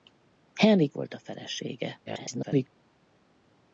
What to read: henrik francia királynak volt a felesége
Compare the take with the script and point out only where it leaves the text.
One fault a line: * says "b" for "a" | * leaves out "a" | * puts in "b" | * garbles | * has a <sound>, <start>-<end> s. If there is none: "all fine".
* leaves out "francia királynak"
* garbles